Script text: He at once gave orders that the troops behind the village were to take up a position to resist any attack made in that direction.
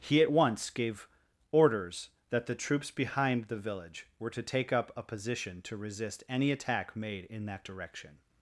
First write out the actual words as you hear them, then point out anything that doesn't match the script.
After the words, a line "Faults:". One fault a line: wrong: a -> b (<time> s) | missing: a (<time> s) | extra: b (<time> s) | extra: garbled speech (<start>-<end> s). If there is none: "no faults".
He at once gave orders that the troops behind the village were to take up a position to resist any attack made in that direction.
Faults:
no faults